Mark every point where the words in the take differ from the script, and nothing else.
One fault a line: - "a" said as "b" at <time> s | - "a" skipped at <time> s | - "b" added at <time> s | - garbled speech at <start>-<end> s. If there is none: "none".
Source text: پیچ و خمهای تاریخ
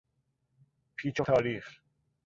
- "خمهای" skipped at 1.2 s